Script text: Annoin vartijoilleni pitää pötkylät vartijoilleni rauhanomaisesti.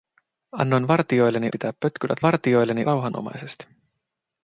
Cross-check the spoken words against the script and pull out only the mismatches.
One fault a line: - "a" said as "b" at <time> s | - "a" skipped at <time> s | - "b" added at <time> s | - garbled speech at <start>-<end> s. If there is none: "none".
none